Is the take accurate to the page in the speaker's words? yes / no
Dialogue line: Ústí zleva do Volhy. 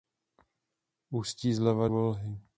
no